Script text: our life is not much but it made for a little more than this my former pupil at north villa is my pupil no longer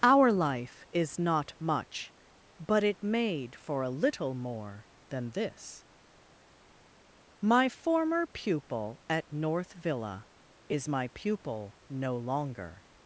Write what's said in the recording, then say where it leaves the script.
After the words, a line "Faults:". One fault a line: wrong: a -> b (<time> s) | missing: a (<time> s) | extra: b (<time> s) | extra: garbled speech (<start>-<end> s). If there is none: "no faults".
our life is not much but it made for a little more than this my former pupil at north villa is my pupil no longer
Faults:
no faults